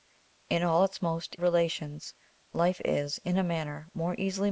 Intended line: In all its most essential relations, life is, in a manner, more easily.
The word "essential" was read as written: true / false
false